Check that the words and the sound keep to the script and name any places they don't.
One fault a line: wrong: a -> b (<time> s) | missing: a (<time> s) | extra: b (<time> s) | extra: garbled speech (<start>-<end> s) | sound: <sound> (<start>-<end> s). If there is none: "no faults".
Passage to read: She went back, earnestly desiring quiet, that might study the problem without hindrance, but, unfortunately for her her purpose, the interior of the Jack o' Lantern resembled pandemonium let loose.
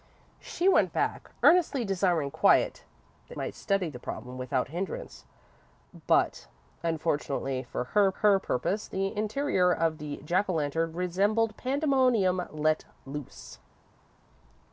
no faults